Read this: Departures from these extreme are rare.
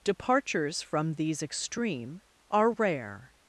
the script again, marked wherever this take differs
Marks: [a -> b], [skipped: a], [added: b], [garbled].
Departures from these extreme are rare.